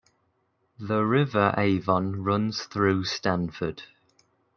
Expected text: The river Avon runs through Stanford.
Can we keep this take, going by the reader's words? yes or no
yes